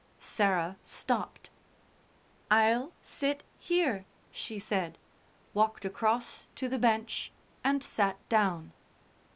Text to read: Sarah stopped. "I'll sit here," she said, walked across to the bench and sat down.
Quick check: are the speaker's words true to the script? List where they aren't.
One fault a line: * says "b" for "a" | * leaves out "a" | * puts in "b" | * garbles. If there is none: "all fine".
all fine